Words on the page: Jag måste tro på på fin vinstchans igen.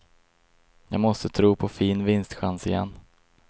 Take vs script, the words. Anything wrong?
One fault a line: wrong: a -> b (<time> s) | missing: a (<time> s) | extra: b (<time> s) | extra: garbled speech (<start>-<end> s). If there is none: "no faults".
missing: på (1.7 s)